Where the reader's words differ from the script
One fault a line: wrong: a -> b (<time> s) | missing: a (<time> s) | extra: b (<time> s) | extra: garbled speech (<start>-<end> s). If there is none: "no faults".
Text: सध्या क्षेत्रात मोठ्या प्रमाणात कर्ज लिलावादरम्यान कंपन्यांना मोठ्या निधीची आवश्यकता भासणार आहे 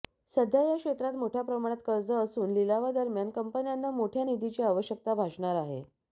extra: या (0.6 s)
extra: असून (2.1 s)